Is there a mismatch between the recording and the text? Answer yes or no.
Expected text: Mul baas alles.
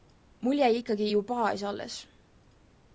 yes